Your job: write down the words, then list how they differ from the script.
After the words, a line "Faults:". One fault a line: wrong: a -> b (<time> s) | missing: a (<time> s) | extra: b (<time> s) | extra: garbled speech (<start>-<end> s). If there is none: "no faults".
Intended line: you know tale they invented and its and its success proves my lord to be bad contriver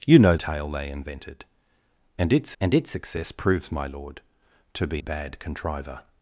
you know tale they invented and its and its success proves my lord to be bad contriver
Faults:
no faults